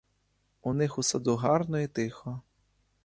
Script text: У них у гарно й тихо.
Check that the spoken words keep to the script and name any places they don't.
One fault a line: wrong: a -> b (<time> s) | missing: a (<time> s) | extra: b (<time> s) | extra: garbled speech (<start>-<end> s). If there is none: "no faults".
extra: саду (1.0 s)